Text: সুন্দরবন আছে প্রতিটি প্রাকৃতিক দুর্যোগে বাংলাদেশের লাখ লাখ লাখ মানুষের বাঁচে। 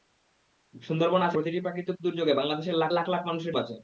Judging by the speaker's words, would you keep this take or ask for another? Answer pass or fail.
pass